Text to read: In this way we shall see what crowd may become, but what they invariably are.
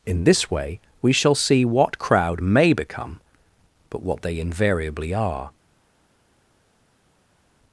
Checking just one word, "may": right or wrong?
right